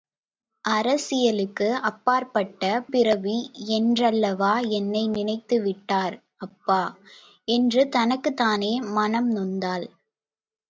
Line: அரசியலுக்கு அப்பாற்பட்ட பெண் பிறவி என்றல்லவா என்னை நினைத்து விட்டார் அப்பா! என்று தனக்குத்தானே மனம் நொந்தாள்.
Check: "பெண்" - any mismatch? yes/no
yes